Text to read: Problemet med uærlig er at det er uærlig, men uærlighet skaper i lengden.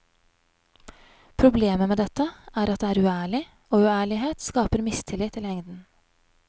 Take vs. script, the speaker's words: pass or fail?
fail